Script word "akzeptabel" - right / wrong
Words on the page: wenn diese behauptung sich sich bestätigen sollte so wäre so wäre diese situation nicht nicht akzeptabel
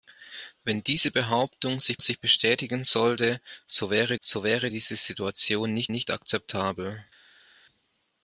right